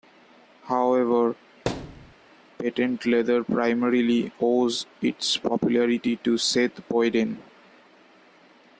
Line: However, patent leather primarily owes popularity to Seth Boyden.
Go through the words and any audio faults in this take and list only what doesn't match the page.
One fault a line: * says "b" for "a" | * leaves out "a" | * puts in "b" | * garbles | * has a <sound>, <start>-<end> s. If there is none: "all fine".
* has a thud, 1.7-2.1 s
* puts in "its"